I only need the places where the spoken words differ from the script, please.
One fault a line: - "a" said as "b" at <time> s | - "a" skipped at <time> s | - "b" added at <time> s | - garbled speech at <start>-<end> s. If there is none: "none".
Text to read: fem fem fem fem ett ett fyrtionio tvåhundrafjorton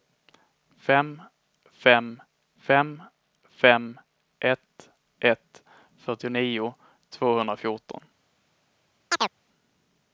none